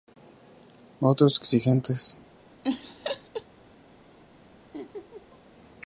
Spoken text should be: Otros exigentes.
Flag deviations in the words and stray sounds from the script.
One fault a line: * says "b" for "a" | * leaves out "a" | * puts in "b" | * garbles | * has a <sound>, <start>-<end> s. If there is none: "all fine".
* has a laugh, 2.6-3.5 s
* has a laugh, 4.7-5.4 s